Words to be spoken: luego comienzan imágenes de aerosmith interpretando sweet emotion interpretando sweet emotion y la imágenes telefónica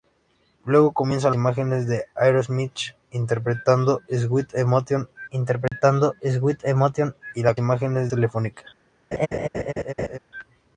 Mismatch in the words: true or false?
false